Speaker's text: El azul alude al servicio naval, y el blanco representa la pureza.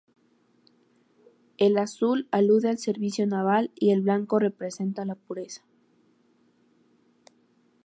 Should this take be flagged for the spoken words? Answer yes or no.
no